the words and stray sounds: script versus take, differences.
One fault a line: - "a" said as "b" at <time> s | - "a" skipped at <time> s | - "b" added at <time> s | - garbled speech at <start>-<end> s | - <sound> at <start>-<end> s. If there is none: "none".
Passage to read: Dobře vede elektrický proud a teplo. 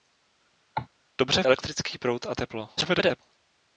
- cough at 0.7-0.9 s
- "vede" skipped at 1.4 s
- garbled speech at 2.8-3.2 s